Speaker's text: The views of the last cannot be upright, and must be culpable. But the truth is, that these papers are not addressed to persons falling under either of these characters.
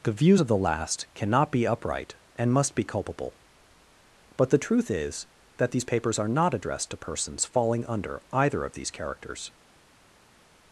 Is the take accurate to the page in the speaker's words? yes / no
yes